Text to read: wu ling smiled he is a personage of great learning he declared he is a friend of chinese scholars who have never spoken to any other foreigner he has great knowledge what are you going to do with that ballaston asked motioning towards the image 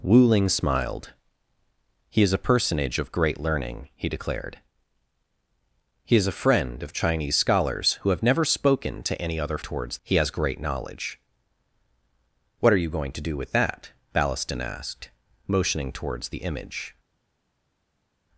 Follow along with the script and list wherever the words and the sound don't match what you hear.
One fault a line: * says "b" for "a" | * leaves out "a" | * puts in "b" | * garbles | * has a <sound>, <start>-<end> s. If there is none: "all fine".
* says "towards" for "foreigner"